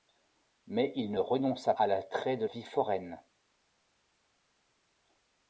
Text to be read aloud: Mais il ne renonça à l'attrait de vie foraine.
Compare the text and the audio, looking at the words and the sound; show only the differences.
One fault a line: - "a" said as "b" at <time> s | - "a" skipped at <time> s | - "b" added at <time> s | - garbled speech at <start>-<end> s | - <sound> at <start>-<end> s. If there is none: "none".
none